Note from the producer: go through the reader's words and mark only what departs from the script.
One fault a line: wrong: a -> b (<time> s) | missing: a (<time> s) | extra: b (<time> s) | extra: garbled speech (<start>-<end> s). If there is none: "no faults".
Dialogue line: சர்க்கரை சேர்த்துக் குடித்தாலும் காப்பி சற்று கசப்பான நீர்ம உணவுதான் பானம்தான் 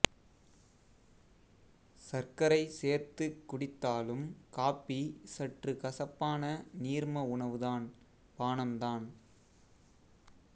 no faults